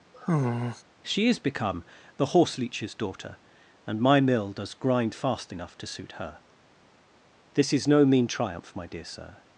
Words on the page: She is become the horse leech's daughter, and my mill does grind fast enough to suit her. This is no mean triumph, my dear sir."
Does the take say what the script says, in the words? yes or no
yes